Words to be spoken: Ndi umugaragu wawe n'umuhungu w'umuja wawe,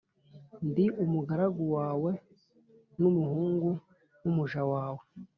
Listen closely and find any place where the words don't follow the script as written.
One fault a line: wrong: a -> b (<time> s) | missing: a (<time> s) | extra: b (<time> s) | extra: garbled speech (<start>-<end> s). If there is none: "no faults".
no faults